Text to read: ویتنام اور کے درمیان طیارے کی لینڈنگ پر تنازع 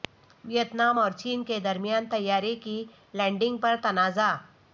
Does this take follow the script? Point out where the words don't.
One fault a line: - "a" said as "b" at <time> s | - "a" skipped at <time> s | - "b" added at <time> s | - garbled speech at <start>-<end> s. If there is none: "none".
- "چین" added at 1.1 s